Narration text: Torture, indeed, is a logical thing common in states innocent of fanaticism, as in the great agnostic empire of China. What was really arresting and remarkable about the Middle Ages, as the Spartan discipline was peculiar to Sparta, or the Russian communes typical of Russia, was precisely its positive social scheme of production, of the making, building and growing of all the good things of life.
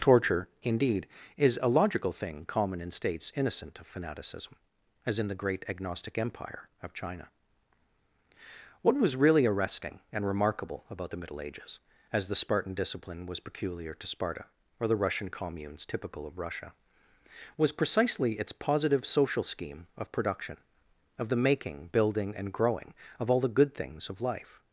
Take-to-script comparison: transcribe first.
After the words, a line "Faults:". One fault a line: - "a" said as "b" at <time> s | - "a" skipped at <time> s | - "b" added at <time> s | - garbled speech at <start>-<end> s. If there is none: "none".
Torture, indeed, is a logical thing common in states innocent of fanaticism, as in the great agnostic empire of China. What was really arresting and remarkable about the Middle Ages, as the Spartan discipline was peculiar to Sparta, or the Russian communes typical of Russia, was precisely its positive social scheme of production, of the making, building and growing of all the good things of life.
Faults:
none